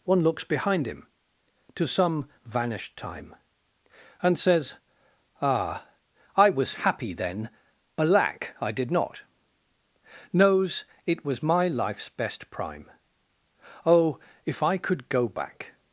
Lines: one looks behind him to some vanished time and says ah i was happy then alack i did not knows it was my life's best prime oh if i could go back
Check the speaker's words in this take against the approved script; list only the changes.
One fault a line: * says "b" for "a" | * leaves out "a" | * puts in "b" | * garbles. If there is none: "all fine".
all fine